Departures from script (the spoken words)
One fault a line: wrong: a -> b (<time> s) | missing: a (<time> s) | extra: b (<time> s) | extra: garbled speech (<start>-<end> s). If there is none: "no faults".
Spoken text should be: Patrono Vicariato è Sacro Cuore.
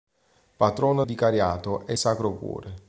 no faults